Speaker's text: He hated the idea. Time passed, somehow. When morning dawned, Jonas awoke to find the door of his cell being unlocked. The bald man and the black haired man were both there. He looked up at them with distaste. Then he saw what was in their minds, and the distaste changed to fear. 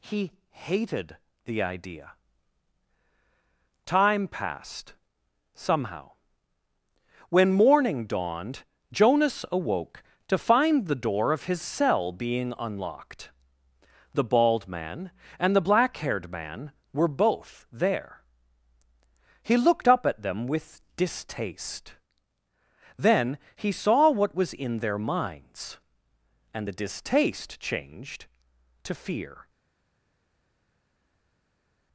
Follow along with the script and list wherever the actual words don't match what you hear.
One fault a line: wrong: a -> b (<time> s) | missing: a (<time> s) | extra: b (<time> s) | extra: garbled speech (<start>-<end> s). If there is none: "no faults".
no faults